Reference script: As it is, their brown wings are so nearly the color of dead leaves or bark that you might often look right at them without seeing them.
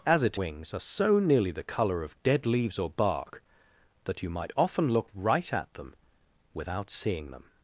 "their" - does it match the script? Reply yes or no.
no